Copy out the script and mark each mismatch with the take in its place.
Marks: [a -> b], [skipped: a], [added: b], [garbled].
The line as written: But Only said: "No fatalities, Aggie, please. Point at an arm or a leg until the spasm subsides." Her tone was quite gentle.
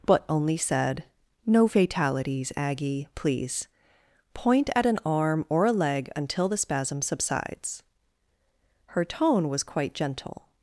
But Only said: "No fatalities, Aggie, please. Point at an arm or a leg until the spasm subsides." Her tone was quite gentle.